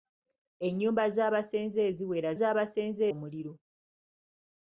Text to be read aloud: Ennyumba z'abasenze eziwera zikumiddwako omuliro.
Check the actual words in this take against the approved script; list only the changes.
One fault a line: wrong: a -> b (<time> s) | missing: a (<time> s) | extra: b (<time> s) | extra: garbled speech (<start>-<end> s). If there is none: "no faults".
wrong: zikumiddwako -> z'abasenze (2.4 s)